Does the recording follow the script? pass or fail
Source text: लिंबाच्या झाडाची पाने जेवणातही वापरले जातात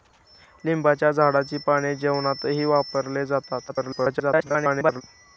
fail